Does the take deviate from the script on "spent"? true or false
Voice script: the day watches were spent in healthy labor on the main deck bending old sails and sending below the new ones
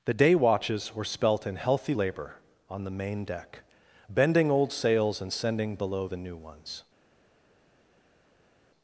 true